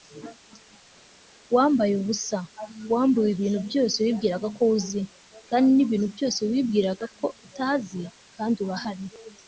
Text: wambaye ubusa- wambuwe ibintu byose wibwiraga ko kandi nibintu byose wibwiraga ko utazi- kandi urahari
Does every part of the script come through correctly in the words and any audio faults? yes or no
no